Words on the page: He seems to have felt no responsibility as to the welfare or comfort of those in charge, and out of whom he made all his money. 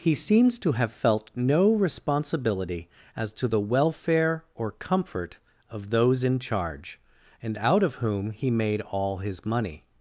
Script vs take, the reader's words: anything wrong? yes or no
no